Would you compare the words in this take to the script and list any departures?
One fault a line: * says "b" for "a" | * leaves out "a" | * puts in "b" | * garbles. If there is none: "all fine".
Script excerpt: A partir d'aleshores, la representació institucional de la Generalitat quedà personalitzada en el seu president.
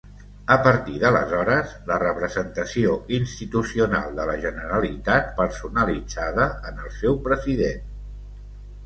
* leaves out "quedà"